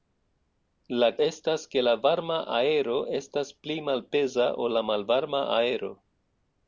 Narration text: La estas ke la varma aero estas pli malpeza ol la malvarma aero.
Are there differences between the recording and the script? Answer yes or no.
no